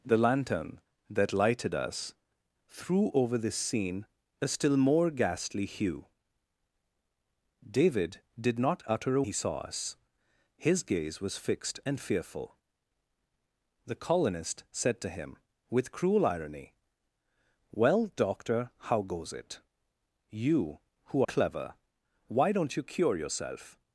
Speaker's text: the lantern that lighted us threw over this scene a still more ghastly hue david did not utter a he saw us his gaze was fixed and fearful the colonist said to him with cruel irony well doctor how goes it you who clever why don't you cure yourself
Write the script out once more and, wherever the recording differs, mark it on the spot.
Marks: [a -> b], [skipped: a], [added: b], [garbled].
the lantern that lighted us threw over this scene a still more ghastly hue david did not utter a he saw us his gaze was fixed and fearful the colonist said to him with cruel irony well doctor how goes it you who clever why don't you cure yourself